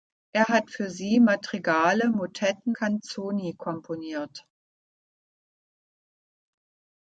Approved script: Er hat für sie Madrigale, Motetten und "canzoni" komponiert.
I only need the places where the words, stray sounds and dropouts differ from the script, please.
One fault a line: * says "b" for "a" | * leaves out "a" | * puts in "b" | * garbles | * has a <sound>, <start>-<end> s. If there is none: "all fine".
* leaves out "und"